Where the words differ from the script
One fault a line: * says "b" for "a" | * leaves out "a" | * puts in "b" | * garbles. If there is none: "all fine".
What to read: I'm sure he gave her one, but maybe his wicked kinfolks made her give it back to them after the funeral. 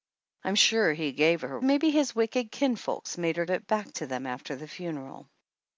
* leaves out "one but"
* leaves out "give"